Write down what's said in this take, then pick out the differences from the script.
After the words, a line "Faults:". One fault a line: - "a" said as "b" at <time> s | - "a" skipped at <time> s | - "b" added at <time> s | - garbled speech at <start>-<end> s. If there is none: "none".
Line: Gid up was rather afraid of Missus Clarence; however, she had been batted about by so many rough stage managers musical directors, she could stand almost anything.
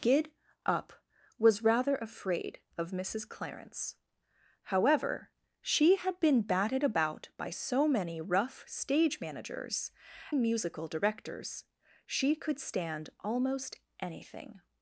Gid up was rather afraid of Missus Clarence; however, she had been batted about by so many rough stage managers musical directors, she could stand almost anything.
Faults:
none